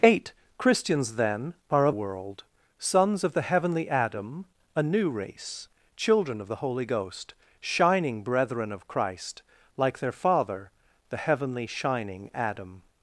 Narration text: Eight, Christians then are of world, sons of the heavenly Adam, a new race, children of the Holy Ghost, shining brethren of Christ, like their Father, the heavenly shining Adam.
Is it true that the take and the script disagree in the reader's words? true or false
false